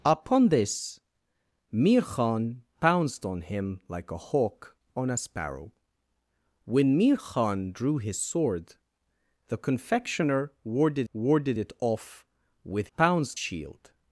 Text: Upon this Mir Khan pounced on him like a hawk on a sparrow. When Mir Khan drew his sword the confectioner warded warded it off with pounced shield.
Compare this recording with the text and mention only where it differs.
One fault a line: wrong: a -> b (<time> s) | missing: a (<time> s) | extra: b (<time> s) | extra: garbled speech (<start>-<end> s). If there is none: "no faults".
no faults